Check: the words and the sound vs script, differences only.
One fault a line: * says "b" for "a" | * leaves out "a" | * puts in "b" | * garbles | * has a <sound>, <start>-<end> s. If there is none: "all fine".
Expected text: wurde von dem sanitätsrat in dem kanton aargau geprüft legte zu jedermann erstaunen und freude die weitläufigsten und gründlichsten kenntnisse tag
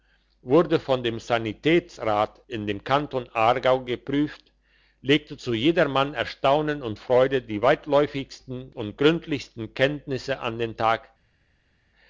* puts in "an den"